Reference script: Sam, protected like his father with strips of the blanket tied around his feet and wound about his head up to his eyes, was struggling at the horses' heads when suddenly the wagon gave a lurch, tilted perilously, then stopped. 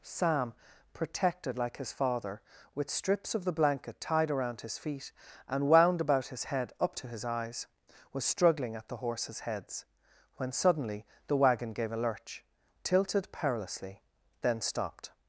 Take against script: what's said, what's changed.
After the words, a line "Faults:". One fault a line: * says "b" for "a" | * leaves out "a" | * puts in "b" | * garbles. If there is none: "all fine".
Sam, protected like his father with strips of the blanket tied around his feet and wound about his head up to his eyes, was struggling at the horses' heads when suddenly the wagon gave a lurch, tilted perilously, then stopped.
Faults:
all fine